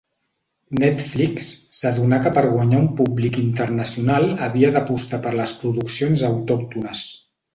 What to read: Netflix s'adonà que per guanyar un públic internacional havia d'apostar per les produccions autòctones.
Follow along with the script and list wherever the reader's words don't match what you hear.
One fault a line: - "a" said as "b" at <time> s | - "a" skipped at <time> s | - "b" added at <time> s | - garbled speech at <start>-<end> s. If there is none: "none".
none